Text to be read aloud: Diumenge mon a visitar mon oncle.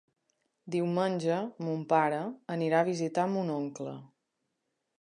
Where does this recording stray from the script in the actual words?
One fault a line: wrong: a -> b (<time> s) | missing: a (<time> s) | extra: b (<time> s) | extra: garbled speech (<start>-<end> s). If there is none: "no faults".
extra: pare anirà (1.9 s)